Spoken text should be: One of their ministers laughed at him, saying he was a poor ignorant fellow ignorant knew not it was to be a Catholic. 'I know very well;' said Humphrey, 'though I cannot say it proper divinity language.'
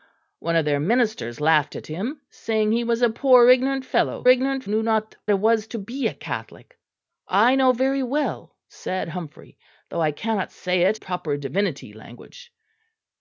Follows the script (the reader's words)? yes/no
yes